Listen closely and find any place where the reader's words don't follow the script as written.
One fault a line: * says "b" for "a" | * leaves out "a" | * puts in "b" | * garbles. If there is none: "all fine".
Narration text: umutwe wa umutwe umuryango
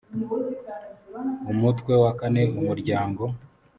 * says "kane" for "umutwe"